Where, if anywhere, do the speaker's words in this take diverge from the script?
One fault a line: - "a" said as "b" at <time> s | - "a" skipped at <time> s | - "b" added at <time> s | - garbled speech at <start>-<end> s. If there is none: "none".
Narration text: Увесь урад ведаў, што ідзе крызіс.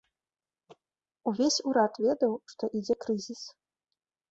none